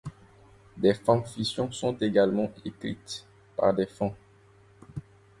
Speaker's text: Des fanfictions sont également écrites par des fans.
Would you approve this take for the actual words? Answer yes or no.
yes